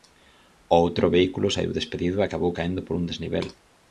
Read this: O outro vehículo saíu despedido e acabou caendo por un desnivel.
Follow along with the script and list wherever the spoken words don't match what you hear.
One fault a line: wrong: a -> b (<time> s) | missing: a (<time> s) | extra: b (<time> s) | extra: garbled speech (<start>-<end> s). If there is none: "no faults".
no faults